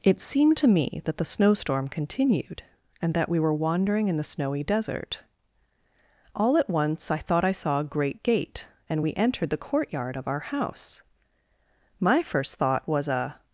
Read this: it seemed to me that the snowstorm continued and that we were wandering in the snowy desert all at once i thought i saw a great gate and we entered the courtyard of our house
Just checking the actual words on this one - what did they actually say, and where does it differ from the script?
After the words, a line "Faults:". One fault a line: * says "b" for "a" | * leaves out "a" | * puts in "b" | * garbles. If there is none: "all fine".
it seemed to me that the snowstorm continued and that we were wandering in the snowy desert all at once i thought i saw a great gate and we entered the courtyard of our house my first thought was a
Faults:
* puts in "my first thought was a"